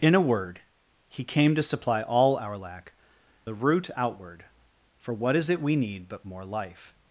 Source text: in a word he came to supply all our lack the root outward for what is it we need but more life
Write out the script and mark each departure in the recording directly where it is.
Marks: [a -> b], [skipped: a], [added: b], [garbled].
in a word he came to supply all our lack the root outward for what is it we need but more life